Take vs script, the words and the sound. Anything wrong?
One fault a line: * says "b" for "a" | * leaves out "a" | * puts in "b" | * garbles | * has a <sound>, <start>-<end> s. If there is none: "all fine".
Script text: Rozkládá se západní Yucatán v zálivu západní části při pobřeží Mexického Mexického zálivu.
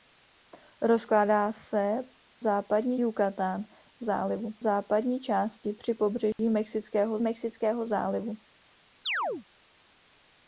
* has a dropout, 6.3-6.4 s
* has a chirp, 9.0-9.5 s